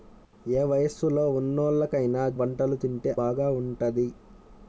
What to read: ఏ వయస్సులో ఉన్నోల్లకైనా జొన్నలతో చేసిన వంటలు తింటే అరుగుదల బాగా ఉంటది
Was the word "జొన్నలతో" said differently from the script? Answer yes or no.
yes